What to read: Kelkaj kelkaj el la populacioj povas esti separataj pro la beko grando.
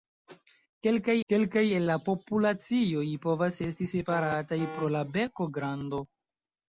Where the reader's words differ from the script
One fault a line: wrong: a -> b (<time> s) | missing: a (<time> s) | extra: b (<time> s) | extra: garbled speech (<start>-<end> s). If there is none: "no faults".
no faults